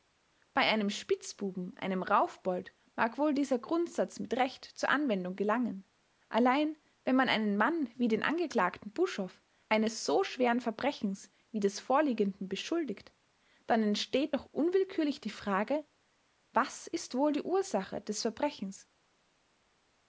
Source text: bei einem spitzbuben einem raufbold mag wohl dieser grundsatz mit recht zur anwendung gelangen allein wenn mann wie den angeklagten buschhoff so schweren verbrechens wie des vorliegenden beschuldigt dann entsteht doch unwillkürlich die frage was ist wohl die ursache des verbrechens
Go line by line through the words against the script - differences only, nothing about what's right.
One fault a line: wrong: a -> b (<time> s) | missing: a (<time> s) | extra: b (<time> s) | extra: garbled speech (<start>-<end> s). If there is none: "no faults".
extra: man einen (7.2 s)
extra: eines (9.7 s)